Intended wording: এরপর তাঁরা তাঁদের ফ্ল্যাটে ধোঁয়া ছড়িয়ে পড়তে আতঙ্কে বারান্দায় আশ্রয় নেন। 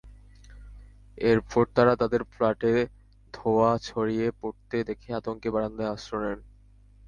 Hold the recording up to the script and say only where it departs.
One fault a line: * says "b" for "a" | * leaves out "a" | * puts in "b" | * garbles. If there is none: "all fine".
* puts in "দেখে"